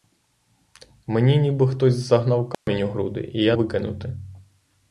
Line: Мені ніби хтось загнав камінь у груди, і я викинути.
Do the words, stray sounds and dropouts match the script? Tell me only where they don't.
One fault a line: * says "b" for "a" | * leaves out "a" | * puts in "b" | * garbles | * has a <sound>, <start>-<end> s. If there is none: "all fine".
* has a dropout, 2.5-2.7 s